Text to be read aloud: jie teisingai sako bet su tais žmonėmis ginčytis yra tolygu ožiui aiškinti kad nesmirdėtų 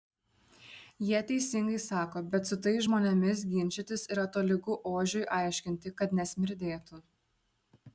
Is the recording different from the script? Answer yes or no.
no